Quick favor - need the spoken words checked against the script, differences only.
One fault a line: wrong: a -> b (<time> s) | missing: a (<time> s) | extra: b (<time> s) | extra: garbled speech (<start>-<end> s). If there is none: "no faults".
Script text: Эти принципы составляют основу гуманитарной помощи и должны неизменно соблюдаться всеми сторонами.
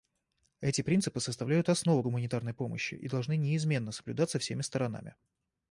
no faults